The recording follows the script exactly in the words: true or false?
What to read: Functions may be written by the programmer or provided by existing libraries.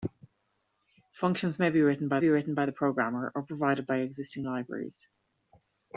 false